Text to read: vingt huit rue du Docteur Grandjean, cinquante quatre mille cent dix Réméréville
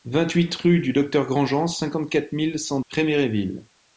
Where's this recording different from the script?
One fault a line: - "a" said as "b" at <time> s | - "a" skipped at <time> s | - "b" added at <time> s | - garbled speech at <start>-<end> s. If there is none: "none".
- "dix" skipped at 2.8 s